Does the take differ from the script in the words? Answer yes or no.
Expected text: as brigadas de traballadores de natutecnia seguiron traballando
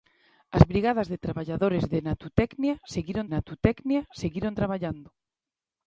yes